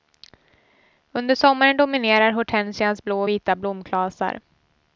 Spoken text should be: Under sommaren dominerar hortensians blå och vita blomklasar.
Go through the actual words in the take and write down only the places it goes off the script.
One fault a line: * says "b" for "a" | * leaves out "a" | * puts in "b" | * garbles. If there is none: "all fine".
all fine